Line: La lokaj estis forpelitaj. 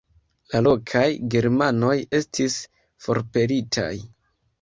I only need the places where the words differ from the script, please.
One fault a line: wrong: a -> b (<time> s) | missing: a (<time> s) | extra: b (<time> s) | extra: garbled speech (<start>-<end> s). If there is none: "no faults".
extra: germanoj (1.3 s)